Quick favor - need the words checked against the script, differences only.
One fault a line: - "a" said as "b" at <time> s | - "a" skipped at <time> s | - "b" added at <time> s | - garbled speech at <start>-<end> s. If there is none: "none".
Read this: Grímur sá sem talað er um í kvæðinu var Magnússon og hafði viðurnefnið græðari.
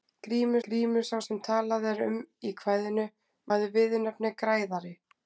- "grímur" added at 0.7 s
- "var Magnússon og" skipped at 3.1 s